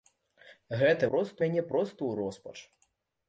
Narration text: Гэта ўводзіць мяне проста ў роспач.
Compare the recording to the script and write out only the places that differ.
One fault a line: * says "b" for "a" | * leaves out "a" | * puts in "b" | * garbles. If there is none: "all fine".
* says "проста" for "ўводзіць"